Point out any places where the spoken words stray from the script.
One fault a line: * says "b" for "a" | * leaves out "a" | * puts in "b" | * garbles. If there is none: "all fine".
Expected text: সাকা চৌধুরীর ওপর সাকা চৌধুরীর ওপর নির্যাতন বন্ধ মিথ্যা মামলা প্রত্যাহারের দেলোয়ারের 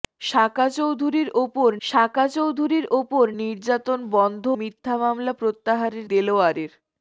all fine